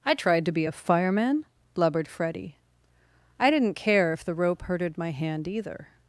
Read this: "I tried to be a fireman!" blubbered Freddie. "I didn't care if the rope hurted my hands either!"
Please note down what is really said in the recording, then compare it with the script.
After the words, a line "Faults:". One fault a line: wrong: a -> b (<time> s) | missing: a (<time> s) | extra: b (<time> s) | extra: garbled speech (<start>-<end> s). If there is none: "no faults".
"I tried to be a fireman!" blubbered Freddie. "I didn't care if the rope hurted my hand either!"
Faults:
wrong: hands -> hand (5.1 s)